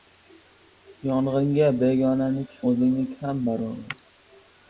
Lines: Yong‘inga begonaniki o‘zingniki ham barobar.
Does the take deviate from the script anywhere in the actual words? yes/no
no